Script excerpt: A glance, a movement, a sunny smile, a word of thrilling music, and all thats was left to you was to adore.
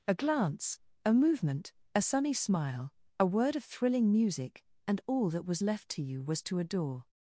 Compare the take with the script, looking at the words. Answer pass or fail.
fail